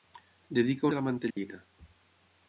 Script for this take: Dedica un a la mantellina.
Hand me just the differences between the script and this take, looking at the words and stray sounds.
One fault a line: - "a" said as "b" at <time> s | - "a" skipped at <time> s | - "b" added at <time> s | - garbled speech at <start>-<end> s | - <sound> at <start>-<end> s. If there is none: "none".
- dropout at 1.3-1.4 s